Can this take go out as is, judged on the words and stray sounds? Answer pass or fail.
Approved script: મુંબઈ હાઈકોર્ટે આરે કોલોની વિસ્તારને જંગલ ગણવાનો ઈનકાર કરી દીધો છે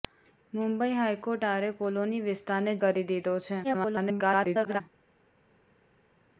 fail